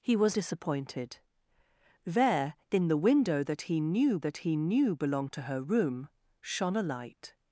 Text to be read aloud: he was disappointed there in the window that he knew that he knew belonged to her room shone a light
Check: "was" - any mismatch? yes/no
no